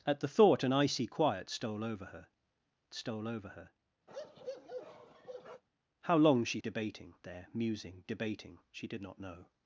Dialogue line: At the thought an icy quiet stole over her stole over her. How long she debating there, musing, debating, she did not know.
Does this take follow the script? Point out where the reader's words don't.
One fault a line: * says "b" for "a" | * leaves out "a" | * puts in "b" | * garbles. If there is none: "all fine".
all fine